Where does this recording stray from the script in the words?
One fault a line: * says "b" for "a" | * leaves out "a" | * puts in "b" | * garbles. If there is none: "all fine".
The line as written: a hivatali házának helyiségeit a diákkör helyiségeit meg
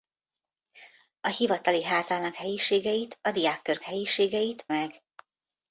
all fine